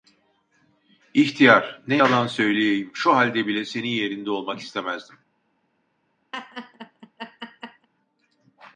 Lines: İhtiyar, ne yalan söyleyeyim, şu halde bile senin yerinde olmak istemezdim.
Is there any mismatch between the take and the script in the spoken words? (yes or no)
no